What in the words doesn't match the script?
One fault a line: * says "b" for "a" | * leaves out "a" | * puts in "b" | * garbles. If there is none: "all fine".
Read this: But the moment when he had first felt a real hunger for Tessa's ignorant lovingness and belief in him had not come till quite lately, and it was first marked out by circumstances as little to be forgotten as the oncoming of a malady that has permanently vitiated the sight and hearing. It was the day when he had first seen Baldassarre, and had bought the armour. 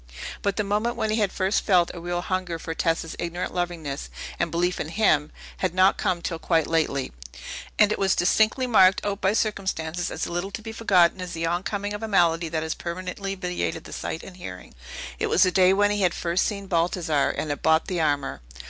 * says "distinctly" for "first"